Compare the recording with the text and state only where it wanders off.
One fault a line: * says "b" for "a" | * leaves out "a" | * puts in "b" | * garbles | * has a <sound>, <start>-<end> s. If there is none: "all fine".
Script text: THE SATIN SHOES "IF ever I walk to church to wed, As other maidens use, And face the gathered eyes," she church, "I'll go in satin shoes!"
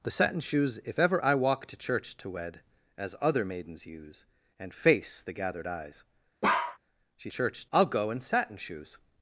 * has a bark, 6.4-6.8 s